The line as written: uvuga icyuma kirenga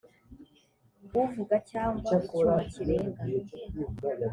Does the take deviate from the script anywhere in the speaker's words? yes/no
yes